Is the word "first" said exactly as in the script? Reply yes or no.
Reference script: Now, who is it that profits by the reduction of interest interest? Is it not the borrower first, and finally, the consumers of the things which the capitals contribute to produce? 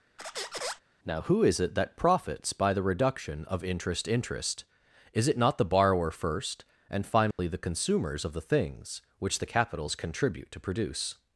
yes